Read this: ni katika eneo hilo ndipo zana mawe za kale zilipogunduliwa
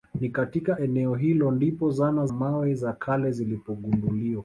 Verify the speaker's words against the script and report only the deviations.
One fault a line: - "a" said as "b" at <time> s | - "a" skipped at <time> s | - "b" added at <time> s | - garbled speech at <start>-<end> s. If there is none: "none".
none